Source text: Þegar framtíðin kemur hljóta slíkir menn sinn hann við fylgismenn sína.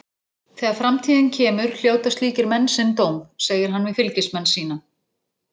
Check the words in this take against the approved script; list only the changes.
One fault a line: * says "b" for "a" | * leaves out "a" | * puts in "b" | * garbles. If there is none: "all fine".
* puts in "dóm segir"